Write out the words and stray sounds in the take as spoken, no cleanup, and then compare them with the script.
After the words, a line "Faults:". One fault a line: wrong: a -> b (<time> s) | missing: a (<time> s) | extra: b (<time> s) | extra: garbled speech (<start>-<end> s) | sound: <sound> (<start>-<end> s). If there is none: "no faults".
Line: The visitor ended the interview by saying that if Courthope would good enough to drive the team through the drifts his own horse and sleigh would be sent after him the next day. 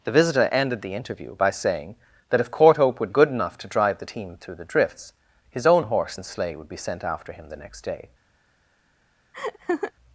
The visitor ended the interview by saying that if Courthope would good enough to drive the team through the drifts his own horse and sleigh would be sent after him the next day.
Faults:
sound: laugh (9.3-9.9 s)